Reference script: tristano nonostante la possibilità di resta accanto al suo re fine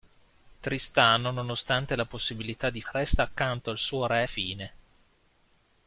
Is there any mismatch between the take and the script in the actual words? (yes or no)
no